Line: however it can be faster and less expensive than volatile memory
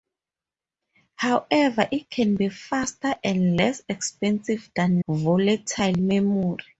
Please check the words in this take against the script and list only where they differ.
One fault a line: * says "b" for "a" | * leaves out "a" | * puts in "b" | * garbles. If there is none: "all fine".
all fine